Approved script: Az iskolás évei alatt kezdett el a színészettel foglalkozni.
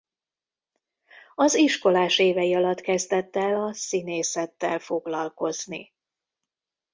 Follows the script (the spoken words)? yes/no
yes